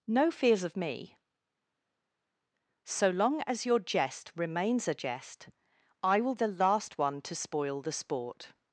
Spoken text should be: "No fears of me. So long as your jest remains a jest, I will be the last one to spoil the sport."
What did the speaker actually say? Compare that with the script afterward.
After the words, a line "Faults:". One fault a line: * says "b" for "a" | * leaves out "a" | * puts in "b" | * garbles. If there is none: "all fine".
"No fears of me. So long as your jest remains a jest, I will the last one to spoil the sport."
Faults:
* leaves out "be"